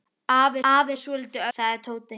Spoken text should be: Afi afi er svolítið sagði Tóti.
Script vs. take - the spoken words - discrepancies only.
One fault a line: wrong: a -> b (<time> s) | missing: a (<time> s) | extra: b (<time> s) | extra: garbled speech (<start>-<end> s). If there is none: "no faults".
no faults